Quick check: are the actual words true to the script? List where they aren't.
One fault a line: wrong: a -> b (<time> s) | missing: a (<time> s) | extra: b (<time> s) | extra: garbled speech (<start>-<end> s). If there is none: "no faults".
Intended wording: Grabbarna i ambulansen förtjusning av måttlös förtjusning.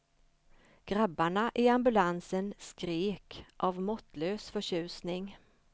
wrong: förtjusning -> skrek (2.6 s)